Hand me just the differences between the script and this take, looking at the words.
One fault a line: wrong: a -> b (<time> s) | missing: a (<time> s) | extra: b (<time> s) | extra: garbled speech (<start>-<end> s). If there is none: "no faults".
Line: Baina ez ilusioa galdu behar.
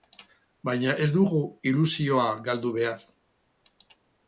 extra: dugu (1.2 s)